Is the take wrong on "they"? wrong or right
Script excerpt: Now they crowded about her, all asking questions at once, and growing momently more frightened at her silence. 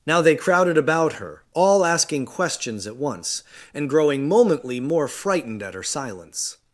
right